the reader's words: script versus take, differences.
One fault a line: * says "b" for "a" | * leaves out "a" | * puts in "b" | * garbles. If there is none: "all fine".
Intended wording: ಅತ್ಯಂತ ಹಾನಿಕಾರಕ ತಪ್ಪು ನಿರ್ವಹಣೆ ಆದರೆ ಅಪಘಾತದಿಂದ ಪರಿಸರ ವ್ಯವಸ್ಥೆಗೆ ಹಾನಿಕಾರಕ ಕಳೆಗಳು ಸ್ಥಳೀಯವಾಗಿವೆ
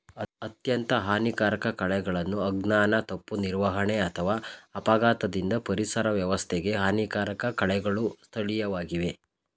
* puts in "ಕಳೆಗಳನ್ನು ಅಜ್ಞಾನ"
* says "ಅಥವಾ" for "ಆದರೆ"